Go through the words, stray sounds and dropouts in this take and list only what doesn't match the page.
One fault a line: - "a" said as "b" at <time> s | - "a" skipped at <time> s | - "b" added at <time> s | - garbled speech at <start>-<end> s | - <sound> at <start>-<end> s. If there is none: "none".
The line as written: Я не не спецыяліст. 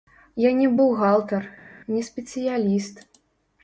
- "бухгалтар" added at 0.8 s